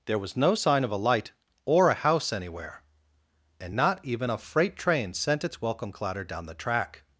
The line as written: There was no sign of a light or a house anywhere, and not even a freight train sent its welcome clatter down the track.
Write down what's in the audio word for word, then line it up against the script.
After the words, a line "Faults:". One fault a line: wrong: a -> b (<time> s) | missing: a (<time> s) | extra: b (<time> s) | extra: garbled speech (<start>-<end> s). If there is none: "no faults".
There was no sign of a light or a house anywhere, and not even a freight train sent its welcome clatter down the track.
Faults:
no faults